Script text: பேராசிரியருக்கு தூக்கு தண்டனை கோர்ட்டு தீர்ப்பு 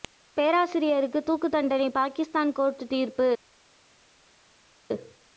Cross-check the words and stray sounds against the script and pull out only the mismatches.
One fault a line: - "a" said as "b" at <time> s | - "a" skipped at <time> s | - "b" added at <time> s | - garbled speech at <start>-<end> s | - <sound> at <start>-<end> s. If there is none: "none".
- "பாகிஸ்தான்" added at 1.9 s